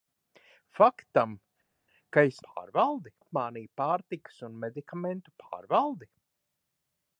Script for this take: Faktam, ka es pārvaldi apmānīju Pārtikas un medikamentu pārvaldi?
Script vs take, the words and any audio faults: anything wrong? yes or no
no